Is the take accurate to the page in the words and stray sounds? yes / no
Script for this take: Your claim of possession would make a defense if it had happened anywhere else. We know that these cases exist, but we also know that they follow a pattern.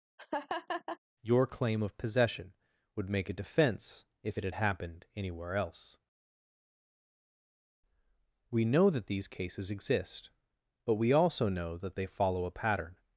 no